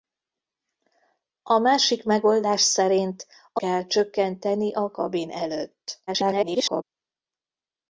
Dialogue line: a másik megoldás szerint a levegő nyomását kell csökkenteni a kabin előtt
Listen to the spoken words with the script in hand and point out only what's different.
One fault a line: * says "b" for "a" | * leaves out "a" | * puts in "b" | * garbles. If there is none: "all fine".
* leaves out "levegő nyomását"
* garbles